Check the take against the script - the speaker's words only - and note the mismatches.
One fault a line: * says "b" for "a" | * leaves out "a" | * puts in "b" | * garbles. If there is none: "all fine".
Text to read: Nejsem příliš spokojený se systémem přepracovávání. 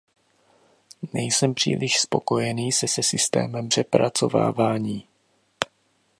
* puts in "se"